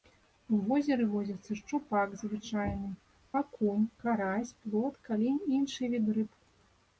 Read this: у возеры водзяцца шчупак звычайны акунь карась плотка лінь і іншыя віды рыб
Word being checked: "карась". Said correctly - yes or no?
yes